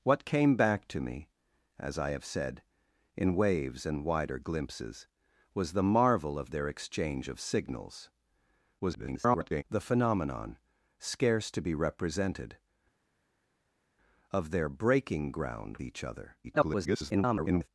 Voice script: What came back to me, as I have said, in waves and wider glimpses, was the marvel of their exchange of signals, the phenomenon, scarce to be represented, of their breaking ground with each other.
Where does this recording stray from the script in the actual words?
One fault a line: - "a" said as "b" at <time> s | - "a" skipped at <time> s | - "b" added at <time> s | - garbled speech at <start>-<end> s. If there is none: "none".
- garbled speech at 8.8-9.6 s
- "with" skipped at 15.8 s
- garbled speech at 16.4-17.7 s